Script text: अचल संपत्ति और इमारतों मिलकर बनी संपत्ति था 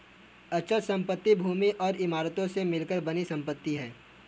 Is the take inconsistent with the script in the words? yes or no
yes